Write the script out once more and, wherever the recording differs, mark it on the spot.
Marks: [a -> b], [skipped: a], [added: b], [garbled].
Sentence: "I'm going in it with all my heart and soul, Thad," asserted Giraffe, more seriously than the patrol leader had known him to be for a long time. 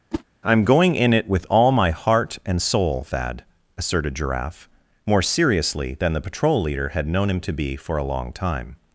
"I'm going in it with all my heart and soul, Thad," asserted Giraffe, more seriously than the patrol leader had known him to be for a long time.